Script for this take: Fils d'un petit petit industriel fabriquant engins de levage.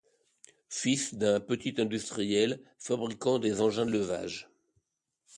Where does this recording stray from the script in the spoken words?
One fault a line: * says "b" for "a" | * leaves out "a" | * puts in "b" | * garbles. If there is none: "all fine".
* leaves out "petit"
* puts in "des"